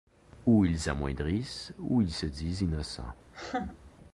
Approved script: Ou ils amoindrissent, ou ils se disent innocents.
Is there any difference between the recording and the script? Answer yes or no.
no